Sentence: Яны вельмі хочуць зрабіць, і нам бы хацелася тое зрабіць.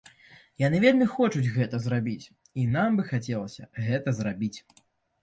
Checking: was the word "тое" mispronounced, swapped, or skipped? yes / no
yes